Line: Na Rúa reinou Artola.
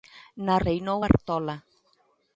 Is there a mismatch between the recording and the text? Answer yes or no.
yes